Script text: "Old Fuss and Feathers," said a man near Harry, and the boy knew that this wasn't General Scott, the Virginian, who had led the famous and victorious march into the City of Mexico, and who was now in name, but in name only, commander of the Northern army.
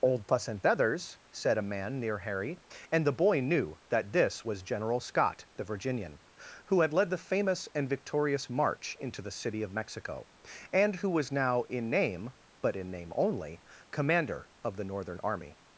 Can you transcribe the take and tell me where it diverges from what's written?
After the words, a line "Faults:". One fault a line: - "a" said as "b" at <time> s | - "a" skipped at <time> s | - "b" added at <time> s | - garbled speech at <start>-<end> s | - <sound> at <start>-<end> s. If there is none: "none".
"Old Fuss and Feathers," said a man near Harry, and the boy knew that this was General Scott, the Virginian, who had led the famous and victorious march into the City of Mexico, and who was now in name, but in name only, commander of the Northern army.
Faults:
- "wasn't" said as "was" at 4.4 s